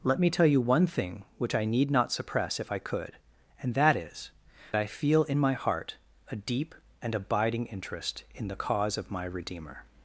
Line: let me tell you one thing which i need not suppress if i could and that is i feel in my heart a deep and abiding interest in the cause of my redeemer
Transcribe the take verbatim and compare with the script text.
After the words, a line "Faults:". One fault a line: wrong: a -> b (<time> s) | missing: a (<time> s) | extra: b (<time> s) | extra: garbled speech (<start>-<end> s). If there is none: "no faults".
let me tell you one thing which i need not suppress if i could and that is i feel in my heart a deep and abiding interest in the cause of my redeemer
Faults:
no faults